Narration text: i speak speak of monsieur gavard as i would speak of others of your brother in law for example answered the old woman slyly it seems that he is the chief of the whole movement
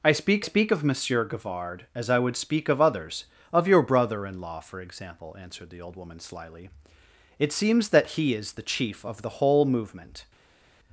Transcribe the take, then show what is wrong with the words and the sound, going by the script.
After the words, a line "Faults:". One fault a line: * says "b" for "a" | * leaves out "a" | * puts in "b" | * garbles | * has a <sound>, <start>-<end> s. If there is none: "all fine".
i speak speak of monsieur gavard as i would speak of others of your brother in law for example answered the old woman slyly it seems that he is the chief of the whole movement
Faults:
all fine